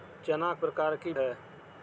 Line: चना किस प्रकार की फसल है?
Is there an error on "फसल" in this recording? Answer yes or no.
yes